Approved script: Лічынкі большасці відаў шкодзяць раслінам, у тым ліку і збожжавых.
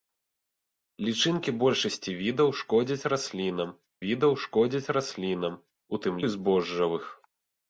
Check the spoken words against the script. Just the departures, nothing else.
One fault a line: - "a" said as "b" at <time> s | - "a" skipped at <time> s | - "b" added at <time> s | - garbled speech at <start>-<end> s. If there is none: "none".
- "відаў шкодзяць раслінам" added at 4.0 s
- "ліку" skipped at 6.1 s